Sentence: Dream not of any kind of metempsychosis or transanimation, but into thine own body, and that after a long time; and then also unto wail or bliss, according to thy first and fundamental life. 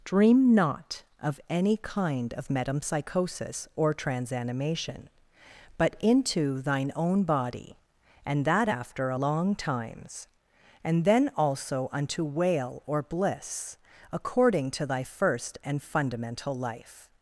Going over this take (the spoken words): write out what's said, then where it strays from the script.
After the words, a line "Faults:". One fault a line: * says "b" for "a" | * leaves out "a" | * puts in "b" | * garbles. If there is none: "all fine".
Dream not of any kind of metempsychosis or transanimation, but into thine own body, and that after a long times; and then also unto wail or bliss, according to thy first and fundamental life.
Faults:
* says "times" for "time"